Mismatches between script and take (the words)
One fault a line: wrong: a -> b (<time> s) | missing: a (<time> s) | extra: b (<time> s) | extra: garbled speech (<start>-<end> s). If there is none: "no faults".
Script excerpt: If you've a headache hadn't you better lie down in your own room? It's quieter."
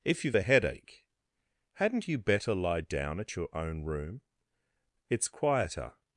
wrong: in -> at (3.2 s)